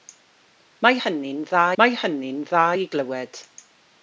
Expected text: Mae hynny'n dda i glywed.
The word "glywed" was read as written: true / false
true